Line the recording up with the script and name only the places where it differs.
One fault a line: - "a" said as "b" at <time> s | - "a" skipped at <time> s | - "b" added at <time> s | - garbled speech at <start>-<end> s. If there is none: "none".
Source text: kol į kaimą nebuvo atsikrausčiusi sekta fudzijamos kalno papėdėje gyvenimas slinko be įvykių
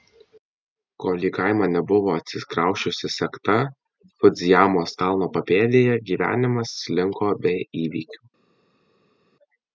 none